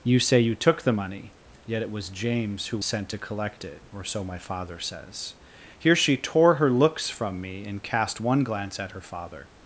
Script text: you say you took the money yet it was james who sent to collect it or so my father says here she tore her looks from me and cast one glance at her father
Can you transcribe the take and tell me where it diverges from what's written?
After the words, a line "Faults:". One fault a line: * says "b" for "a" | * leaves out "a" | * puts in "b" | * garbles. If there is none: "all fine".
you say you took the money yet it was james who sent to collect it or so my father says here she tore her looks from me and cast one glance at her father
Faults:
all fine